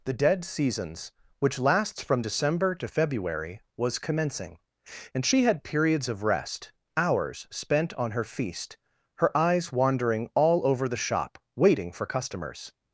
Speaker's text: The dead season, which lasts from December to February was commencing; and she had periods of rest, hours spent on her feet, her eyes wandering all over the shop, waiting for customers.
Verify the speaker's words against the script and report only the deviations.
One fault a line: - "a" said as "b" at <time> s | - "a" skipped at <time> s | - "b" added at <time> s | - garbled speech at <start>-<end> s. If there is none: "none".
- "season" said as "seasons" at 0.5 s
- "feet" said as "feast" at 8.2 s